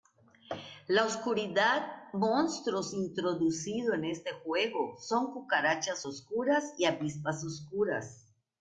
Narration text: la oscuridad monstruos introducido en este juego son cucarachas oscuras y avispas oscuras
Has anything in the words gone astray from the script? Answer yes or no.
no